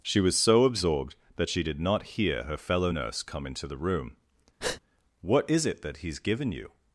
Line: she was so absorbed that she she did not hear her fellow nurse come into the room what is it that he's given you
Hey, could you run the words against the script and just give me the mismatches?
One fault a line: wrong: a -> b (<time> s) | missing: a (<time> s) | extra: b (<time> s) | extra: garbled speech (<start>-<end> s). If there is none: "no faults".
missing: she (1.6 s)